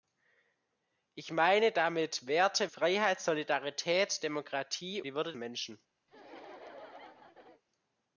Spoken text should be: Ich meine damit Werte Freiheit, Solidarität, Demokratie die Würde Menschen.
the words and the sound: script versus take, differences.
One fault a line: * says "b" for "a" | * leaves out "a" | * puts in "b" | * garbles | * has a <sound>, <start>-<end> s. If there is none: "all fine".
* has a laugh, 6.1-7.6 s